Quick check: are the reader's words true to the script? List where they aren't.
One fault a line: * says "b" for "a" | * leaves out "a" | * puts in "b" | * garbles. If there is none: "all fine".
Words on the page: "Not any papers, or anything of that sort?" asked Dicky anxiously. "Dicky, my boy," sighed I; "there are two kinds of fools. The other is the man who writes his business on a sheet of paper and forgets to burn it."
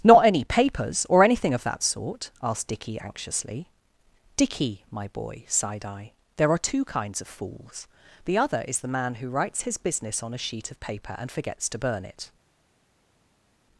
all fine